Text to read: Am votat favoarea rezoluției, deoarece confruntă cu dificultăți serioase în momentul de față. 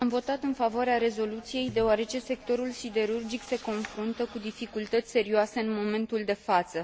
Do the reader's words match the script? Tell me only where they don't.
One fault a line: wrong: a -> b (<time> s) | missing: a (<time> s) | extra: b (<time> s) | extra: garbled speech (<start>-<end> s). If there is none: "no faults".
extra: în (0.4 s)
extra: sectorul siderurgic se (2.2 s)